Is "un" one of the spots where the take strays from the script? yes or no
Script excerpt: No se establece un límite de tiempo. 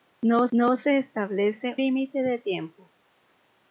yes